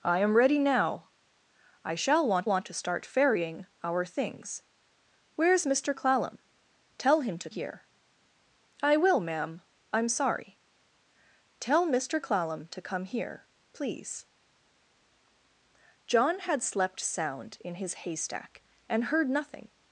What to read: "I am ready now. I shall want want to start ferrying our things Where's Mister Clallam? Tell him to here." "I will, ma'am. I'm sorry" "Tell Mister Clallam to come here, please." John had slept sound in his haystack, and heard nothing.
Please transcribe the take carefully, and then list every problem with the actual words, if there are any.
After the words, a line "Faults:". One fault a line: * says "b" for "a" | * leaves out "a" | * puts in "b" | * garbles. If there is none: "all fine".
"I am ready now. I shall want want to start ferrying our things Where's Mister Clallam? Tell him to here." "I will, ma'am. I'm sorry" "Tell Mister Clallam to come here, please." John had slept sound in his haystack, and heard nothing.
Faults:
all fine